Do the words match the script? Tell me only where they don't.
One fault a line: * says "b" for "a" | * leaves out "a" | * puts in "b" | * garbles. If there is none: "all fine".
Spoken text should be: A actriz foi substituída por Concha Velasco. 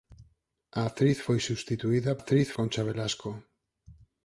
* says "actriz" for "por"